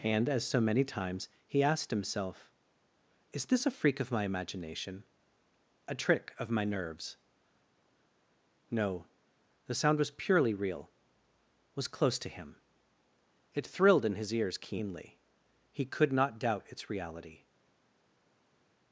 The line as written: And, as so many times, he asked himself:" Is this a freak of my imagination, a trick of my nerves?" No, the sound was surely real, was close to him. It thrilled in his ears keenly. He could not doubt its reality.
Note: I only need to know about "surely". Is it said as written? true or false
false